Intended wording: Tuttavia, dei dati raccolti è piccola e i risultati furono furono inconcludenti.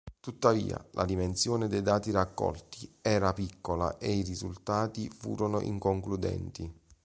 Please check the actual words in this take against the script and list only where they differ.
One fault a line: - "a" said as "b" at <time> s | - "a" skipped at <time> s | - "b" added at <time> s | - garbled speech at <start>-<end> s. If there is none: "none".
- "la dimensione" added at 0.9 s
- "è" said as "era" at 3.0 s
- "furono" skipped at 5.6 s